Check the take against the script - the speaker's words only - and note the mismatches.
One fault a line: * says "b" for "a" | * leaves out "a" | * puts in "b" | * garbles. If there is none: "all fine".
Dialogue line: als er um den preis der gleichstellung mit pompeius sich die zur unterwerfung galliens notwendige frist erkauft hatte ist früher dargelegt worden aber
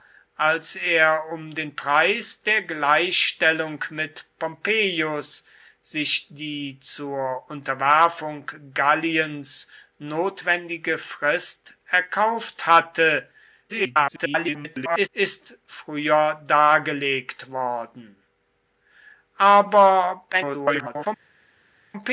* garbles
* garbles